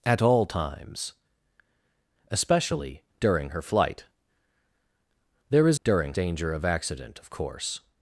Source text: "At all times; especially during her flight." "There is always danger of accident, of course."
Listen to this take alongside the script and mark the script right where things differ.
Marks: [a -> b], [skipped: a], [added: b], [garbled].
"At all times; especially during her flight." "There is [always -> during] danger of accident, of course."